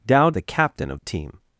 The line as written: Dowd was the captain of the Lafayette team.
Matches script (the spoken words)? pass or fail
fail